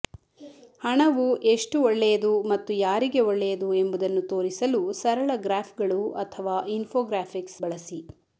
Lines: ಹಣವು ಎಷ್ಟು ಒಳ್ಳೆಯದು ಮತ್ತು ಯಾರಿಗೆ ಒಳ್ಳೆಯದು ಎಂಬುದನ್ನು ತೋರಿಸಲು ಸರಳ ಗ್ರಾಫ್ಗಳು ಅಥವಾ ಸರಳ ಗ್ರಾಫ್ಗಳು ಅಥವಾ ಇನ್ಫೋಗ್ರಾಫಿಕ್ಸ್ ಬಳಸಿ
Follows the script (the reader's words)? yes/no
no